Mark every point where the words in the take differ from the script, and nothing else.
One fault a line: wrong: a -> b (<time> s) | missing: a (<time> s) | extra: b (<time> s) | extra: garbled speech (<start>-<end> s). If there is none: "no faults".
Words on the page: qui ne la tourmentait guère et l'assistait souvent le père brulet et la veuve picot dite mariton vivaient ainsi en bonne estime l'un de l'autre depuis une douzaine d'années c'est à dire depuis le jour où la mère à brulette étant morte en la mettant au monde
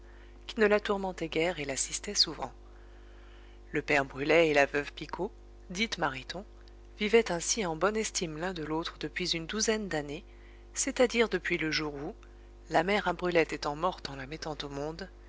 no faults